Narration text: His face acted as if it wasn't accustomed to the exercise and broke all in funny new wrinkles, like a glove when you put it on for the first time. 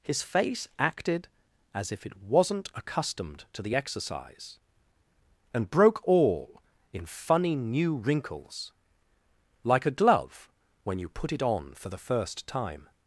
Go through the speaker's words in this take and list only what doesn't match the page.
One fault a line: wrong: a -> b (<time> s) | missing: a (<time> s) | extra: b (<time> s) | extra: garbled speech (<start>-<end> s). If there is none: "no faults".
no faults